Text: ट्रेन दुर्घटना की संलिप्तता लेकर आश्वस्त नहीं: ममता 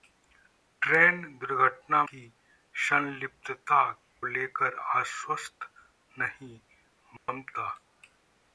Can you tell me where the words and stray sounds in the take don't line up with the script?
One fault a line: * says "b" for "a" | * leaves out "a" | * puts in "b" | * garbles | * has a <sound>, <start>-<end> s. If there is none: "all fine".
* has a dropout, 7.2-7.3 s